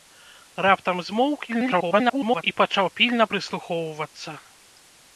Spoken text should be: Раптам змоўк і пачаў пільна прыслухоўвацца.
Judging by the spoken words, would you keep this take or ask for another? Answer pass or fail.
fail